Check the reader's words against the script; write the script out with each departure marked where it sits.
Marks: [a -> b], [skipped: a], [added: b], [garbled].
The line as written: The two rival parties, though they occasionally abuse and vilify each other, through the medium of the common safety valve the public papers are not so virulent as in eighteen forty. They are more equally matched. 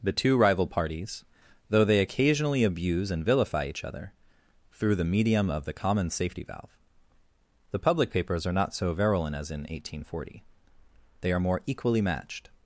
The two rival parties, though they occasionally abuse and vilify each other, through the medium of the common safety valve the public papers are not so virulent as in eighteen forty. They are more equally matched.